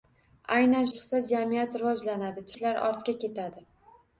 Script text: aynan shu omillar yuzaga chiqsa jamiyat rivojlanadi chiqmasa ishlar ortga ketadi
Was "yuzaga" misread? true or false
true